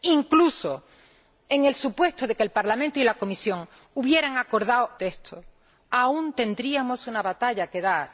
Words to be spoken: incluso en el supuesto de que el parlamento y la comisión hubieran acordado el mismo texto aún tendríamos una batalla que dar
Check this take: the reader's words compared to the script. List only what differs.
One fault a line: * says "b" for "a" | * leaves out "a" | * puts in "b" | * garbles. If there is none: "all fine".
* leaves out "el mismo"